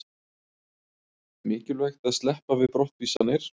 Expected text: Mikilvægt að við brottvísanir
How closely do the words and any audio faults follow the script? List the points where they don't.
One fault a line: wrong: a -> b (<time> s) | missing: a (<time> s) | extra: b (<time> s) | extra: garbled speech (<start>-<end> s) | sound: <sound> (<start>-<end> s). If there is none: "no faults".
extra: sleppa (2.2 s)
sound: dropout (3.2-3.2 s)